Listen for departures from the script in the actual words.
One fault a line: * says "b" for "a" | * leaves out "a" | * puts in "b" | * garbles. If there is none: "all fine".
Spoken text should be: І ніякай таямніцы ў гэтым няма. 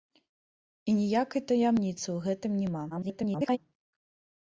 * garbles